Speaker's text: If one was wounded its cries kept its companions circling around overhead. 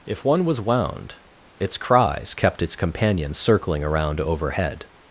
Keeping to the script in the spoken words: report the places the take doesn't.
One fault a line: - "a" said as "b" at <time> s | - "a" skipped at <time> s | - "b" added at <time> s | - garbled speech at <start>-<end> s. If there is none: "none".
- "wounded" said as "wound" at 0.6 s